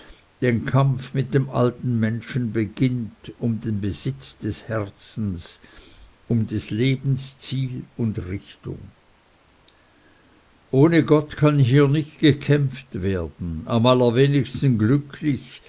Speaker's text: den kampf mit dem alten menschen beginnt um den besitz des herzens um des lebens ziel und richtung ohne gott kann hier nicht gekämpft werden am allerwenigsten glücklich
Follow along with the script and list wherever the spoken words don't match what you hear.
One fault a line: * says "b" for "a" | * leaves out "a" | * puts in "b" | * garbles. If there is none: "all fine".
all fine